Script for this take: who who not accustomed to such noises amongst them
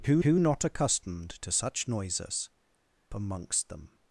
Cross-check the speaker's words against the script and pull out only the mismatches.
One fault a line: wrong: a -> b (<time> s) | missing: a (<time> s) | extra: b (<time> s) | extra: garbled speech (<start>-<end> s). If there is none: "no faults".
no faults